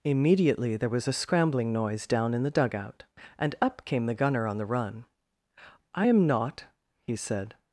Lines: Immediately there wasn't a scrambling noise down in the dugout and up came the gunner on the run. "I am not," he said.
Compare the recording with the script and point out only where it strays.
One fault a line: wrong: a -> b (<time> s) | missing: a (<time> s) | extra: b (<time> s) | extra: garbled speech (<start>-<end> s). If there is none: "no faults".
wrong: wasn't -> was (0.9 s)